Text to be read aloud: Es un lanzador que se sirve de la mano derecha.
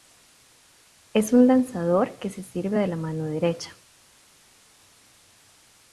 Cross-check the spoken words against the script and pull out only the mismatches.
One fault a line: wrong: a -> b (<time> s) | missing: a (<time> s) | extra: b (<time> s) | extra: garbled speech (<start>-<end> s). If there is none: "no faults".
no faults